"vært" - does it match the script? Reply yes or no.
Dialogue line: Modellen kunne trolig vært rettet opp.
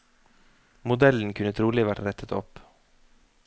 yes